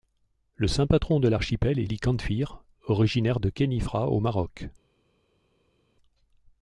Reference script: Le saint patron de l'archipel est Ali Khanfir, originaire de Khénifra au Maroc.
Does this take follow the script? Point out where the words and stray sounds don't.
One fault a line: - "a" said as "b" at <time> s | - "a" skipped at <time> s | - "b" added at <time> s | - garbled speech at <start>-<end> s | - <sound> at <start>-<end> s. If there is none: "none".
none